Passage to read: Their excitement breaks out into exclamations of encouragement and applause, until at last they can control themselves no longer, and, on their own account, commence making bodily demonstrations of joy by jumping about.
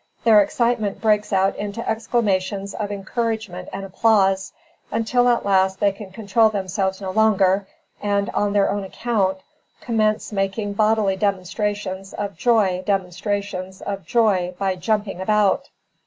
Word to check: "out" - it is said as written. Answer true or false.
true